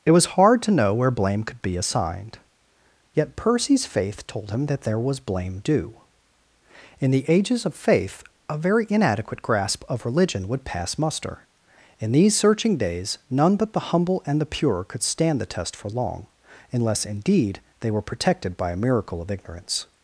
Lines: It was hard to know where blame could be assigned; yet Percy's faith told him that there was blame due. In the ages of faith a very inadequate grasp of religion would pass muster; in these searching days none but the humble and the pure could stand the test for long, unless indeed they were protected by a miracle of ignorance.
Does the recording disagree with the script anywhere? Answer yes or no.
no